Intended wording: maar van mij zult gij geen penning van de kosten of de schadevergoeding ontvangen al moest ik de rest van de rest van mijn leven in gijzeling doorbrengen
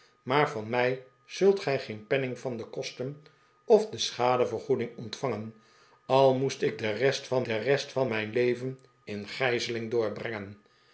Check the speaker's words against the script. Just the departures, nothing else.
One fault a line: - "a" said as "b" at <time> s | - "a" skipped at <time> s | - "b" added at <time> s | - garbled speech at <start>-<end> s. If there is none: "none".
none